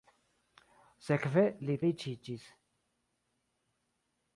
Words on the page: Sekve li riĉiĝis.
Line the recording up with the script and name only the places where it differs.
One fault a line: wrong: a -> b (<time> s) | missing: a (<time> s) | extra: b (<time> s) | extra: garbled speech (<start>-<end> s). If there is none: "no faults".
no faults